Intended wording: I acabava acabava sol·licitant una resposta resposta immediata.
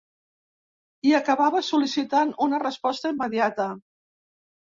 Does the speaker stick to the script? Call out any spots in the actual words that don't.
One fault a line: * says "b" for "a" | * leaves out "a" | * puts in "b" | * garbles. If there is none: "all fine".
* leaves out "acabava"
* leaves out "resposta"